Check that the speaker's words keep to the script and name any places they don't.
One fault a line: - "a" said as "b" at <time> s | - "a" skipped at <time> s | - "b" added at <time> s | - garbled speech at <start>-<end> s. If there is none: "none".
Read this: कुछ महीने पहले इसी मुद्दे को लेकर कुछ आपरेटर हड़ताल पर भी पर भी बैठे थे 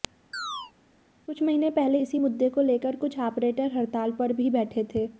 - "पर भी" skipped at 4.5 s